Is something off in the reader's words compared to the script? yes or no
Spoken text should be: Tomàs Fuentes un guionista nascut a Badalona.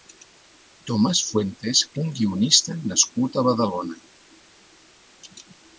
no